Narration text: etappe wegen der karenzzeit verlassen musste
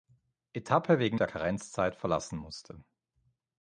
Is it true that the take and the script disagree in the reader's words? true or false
false